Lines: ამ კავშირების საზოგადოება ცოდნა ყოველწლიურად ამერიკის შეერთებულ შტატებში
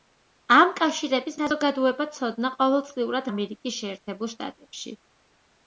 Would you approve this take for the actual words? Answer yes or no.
yes